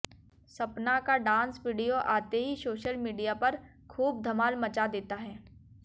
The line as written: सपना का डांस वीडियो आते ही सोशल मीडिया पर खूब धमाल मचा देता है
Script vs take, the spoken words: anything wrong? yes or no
no